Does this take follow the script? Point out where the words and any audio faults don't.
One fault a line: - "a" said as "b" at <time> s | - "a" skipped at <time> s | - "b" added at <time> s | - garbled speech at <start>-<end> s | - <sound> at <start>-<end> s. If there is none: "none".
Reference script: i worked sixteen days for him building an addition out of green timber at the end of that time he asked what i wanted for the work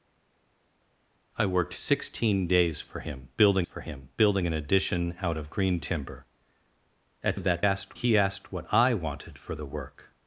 - "for him building" added at 3.6 s
- "the end" skipped at 7.4 s
- "time" said as "asked" at 7.6 s